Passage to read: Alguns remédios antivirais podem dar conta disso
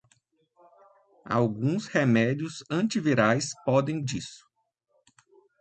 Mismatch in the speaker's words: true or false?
true